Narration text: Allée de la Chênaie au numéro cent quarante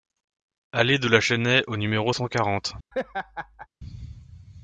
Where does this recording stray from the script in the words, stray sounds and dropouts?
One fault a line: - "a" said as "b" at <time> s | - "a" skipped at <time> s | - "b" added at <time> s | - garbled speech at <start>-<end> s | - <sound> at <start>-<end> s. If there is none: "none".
- laugh at 2.9-3.7 s